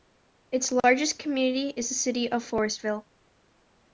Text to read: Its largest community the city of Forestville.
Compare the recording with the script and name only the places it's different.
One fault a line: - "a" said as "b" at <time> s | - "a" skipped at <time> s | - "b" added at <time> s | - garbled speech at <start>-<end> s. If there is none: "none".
- "is" added at 1.7 s